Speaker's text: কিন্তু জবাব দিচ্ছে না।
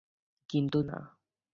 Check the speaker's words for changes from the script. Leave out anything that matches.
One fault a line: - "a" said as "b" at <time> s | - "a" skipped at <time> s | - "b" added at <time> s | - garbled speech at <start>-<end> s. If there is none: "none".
- "জবাব দিচ্ছে" skipped at 0.8 s